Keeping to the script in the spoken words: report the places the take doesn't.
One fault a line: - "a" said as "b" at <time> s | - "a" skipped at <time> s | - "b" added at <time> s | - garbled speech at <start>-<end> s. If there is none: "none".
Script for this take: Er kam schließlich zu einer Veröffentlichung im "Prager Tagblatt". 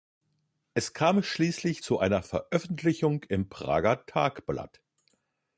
- "Er" said as "Es" at 0.7 s